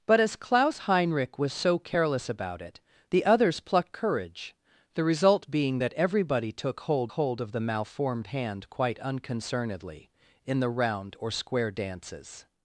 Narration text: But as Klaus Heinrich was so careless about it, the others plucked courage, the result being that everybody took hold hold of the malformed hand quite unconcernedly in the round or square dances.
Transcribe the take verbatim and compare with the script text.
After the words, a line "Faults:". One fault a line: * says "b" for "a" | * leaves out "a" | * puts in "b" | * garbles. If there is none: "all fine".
But as Klaus Heinrich was so careless about it, the others plucked courage, the result being that everybody took hold hold of the malformed hand quite unconcernedly in the round or square dances.
Faults:
all fine